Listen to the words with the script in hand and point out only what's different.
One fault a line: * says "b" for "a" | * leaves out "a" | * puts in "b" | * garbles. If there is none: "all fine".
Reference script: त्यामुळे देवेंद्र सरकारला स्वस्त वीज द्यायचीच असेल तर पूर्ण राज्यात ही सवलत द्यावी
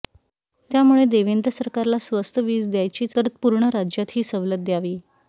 * leaves out "असेल"